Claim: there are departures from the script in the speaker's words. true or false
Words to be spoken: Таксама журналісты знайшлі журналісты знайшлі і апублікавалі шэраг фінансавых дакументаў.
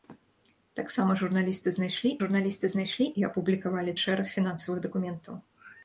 false